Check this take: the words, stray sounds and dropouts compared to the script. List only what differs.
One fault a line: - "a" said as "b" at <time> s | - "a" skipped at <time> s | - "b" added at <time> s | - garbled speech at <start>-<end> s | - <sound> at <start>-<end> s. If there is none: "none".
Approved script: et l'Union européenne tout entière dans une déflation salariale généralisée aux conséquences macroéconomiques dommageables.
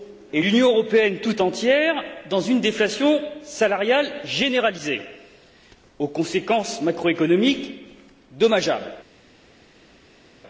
none